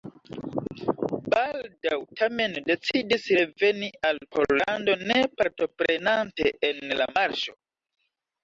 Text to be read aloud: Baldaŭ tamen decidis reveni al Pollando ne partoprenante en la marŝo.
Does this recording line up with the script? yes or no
yes